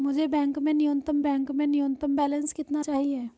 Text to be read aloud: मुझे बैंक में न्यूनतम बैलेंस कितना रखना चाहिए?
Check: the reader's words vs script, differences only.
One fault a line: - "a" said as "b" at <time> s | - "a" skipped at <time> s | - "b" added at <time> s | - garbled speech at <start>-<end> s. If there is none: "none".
- "बैंक में न्यूनतम" added at 1.2 s
- "रखना" skipped at 2.8 s